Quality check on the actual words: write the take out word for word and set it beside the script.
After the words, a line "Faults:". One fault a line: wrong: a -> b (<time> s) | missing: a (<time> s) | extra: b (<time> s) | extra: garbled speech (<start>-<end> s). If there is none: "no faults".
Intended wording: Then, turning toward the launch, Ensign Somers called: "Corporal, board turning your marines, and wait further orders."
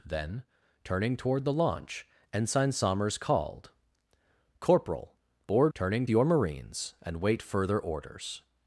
Then, turning toward the launch, Ensign Somers called: "Corporal, board turning your marines, and wait further orders."
Faults:
no faults